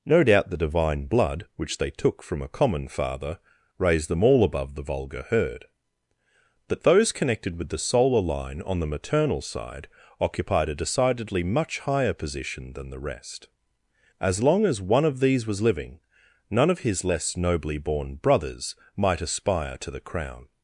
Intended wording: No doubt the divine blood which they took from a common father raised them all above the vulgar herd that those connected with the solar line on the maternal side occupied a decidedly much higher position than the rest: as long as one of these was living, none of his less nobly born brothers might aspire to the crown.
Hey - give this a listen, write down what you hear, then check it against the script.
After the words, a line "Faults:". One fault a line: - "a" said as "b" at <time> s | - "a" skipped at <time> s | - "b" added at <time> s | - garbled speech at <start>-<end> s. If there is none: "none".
No doubt the divine blood which they took from a common father raised them all above the vulgar herd that those connected with the solar line on the maternal side occupied a decidedly much higher position than the rest: as long as one of these was living, none of his less nobly born brothers might aspire to the crown.
Faults:
none